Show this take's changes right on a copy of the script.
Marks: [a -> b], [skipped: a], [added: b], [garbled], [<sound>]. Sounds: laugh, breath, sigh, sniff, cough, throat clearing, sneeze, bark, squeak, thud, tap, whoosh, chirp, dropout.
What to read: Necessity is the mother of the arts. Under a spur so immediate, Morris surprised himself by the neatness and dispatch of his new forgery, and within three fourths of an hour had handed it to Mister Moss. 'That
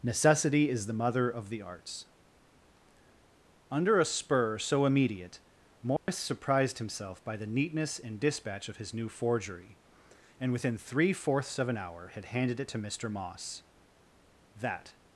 Necessity is the mother of the arts. Under a spur so immediate, Morris [dropout] surprised himself by the neatness and dispatch of his new forgery, and within three fourths of an hour had handed it to Mister Moss. 'That